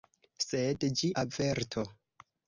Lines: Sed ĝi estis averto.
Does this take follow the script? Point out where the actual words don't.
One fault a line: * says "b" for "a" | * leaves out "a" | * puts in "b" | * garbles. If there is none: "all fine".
* leaves out "estis"